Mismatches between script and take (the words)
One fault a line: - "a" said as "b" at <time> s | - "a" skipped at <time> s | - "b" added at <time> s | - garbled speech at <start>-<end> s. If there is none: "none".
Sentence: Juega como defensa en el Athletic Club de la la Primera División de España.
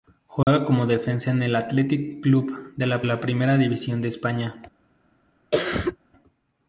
none